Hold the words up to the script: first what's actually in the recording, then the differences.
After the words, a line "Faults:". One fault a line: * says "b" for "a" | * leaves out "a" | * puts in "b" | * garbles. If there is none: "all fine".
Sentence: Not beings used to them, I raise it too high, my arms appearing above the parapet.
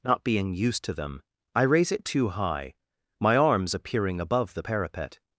Not being used to them, I raise it too high, my arms appearing above the parapet.
Faults:
* says "being" for "beings"